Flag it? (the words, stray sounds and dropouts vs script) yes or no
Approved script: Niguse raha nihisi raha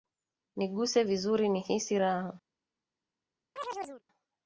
yes